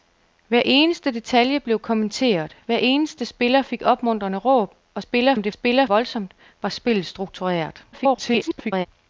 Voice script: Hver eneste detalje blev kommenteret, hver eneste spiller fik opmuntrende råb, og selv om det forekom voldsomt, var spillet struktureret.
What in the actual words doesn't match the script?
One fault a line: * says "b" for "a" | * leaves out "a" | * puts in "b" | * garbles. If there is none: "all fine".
* says "spiller" for "selv"
* says "spiller" for "forekom"
* garbles